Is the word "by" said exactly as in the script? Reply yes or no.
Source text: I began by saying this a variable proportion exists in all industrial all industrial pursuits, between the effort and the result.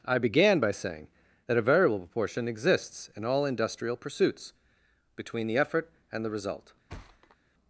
yes